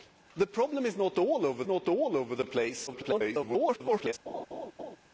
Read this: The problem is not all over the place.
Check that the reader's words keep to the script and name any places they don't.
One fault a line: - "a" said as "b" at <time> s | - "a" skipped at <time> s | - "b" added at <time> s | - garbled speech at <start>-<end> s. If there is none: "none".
- "not all over" added at 1.6 s
- garbled speech at 2.9-4.1 s